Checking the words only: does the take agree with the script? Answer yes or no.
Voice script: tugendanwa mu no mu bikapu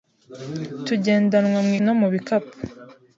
yes